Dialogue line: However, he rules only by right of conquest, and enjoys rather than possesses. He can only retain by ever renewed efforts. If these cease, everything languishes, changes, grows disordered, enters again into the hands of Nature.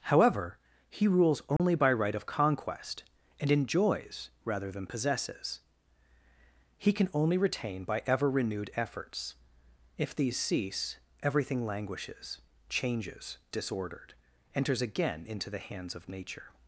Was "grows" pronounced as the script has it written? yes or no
no